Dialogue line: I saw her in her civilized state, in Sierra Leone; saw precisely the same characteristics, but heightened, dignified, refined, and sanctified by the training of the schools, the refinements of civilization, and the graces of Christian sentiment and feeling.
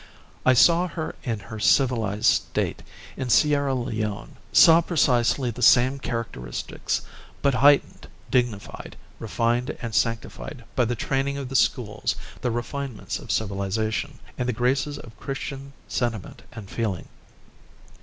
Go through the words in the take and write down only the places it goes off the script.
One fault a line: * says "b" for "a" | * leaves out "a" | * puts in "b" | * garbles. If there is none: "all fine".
all fine